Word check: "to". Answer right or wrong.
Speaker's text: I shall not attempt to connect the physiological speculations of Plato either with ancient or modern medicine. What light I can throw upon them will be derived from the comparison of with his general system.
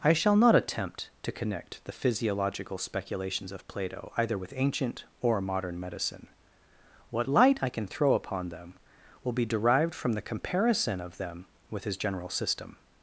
right